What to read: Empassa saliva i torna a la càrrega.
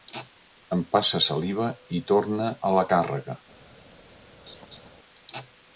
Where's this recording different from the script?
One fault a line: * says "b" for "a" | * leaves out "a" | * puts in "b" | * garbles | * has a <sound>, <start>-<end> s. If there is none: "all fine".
* has a laugh, 4.5-4.9 s